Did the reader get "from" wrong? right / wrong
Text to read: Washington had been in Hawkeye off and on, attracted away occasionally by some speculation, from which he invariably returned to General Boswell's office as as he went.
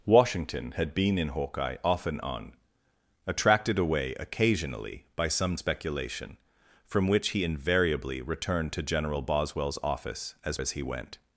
right